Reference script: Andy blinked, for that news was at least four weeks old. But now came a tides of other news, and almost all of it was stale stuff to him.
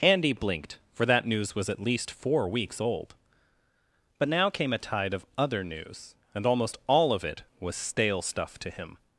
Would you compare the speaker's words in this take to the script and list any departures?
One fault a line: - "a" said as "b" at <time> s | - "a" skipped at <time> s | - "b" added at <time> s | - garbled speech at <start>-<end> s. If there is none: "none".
- "tides" said as "tide" at 4.8 s